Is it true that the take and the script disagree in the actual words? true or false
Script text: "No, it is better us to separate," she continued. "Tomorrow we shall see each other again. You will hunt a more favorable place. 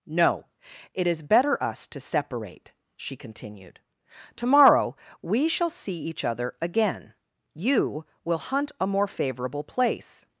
false